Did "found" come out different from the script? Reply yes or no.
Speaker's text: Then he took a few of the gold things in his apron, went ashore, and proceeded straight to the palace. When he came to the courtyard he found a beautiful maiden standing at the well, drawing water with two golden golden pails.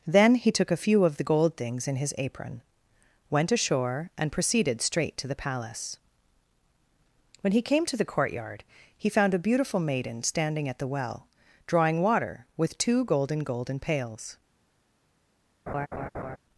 no